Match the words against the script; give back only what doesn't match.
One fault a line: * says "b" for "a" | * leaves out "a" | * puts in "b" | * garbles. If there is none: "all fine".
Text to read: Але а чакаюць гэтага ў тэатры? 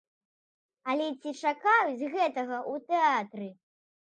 * says "ці" for "а"